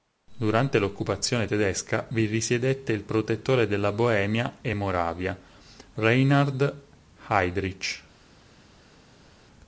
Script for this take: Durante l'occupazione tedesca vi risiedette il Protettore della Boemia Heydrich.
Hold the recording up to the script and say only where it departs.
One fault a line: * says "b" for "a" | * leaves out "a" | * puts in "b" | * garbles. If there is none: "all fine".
* puts in "e Moravia Reinhard"